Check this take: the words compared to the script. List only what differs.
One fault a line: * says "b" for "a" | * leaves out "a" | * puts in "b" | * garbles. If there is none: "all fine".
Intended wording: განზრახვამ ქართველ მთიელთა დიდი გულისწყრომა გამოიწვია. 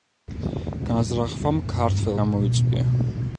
* leaves out "მთიელთა დიდი გულისწყრომა"